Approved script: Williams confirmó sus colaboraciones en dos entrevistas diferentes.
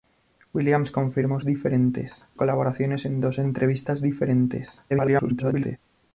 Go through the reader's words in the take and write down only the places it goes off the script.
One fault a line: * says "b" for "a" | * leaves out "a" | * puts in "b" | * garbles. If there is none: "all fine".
* says "diferentes" for "sus"
* garbles